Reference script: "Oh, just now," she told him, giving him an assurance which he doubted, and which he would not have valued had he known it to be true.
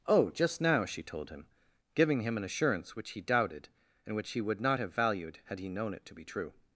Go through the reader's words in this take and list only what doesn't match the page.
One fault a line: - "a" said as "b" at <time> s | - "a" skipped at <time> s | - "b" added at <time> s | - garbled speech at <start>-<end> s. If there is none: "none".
none